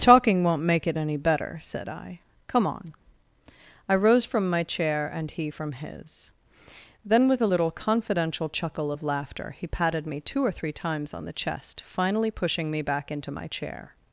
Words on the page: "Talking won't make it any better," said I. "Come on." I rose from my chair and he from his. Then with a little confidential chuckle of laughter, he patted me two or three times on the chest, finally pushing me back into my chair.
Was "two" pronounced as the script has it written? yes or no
yes